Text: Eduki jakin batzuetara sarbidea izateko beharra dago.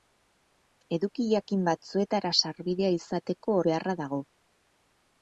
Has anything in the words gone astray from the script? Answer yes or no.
no